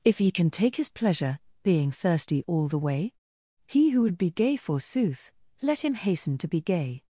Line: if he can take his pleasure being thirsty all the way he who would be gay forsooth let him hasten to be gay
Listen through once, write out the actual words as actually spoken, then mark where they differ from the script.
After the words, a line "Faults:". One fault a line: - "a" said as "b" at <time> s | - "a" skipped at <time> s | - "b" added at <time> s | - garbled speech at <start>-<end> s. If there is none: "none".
if he can take his pleasure being thirsty all the way he who would be gay forsooth let him hasten to be gay
Faults:
none